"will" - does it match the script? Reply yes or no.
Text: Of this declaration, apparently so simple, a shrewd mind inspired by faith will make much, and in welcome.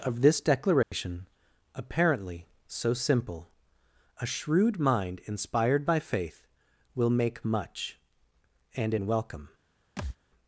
yes